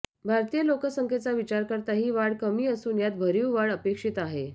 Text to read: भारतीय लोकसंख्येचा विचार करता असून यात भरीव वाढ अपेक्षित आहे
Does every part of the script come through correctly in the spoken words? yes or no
no